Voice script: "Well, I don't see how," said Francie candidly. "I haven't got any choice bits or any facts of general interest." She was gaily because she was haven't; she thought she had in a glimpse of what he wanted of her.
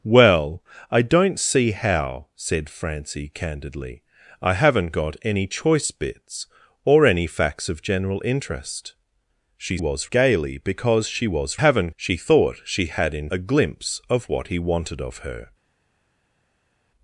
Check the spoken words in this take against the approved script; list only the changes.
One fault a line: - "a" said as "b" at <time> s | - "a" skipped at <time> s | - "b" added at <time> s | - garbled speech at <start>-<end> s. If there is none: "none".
none